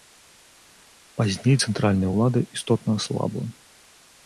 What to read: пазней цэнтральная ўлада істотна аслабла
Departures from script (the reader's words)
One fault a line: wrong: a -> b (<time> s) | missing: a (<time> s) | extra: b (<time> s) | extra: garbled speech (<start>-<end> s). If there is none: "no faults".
no faults